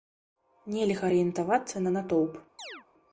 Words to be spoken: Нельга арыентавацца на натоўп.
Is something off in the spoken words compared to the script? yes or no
no